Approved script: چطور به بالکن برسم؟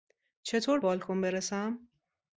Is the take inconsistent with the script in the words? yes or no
yes